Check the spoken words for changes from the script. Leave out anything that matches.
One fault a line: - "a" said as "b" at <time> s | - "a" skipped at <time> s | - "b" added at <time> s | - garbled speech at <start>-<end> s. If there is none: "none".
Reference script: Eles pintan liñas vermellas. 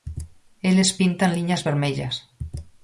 none